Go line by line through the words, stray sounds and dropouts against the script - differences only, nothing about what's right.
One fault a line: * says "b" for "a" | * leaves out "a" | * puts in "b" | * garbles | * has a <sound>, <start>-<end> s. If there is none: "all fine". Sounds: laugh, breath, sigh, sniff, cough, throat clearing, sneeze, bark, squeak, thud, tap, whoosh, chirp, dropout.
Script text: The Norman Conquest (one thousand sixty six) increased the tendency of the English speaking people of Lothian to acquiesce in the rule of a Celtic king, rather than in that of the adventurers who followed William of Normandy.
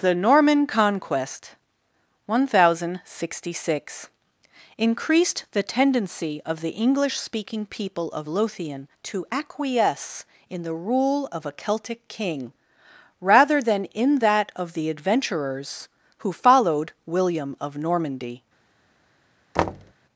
* has a thud, 19.5-19.9 s